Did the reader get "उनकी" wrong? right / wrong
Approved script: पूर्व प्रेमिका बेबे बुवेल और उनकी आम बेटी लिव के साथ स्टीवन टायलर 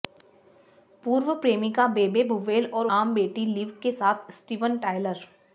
wrong